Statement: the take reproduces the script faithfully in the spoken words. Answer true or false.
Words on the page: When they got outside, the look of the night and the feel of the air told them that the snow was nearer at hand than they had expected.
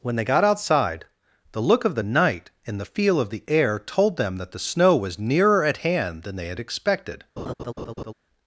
true